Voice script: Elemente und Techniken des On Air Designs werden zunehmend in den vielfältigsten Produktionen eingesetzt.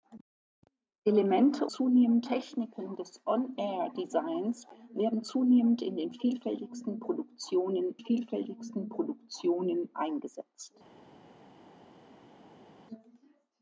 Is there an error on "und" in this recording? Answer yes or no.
yes